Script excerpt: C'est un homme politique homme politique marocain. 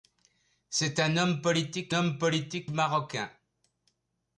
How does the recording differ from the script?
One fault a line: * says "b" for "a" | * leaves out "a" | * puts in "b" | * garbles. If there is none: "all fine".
all fine